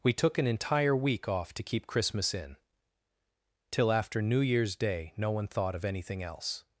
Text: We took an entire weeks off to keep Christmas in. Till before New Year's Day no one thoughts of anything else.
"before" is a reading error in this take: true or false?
true